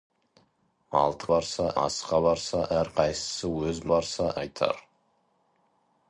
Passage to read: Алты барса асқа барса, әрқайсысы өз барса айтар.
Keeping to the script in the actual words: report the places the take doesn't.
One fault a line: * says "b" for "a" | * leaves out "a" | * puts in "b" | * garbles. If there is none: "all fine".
all fine